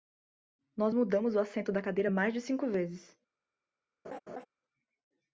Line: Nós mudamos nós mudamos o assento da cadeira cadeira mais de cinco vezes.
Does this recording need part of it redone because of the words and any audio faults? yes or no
yes